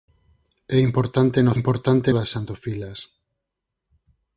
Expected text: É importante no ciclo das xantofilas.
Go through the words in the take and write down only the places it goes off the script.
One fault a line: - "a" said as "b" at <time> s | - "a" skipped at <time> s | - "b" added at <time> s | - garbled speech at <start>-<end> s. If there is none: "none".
- "ciclo" said as "importante" at 1.6 s